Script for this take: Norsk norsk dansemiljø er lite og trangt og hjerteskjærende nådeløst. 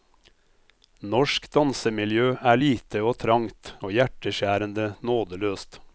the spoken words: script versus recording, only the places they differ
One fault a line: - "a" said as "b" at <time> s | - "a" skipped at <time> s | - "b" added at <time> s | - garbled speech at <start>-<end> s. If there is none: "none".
- "norsk" skipped at 1.5 s